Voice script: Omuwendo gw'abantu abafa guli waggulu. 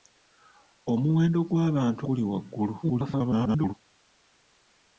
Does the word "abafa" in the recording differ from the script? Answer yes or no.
yes